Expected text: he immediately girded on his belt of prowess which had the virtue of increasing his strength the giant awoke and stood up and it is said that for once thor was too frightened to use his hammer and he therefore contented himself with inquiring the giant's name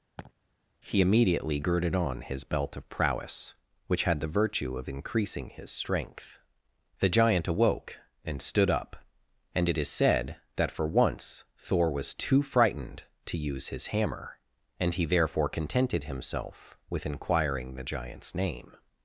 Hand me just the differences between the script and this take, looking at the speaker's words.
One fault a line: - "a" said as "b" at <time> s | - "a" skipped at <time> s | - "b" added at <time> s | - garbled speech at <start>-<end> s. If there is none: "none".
none